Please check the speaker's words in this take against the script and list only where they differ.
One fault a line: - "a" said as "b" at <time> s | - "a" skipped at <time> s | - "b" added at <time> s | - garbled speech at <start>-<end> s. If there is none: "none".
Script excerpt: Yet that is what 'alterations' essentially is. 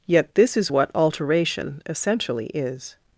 - "that" said as "this" at 0.3 s
- "alterations" said as "alteration" at 0.9 s